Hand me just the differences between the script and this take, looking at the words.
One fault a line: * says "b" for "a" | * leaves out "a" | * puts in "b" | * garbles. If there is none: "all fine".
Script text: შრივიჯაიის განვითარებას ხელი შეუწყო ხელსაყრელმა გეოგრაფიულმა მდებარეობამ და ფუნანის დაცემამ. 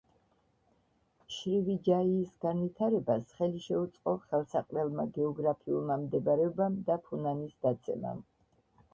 all fine